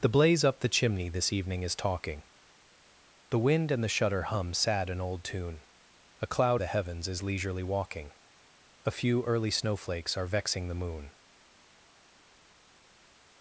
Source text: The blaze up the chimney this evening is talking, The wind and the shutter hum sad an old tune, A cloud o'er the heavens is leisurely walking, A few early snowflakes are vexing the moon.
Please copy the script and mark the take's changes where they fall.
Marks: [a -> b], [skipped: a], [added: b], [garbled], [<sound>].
The blaze up the chimney this evening is talking, The wind and the shutter hum sad an old tune, A cloud [skipped: o'er] the heavens is leisurely walking, A few early snowflakes are vexing the moon.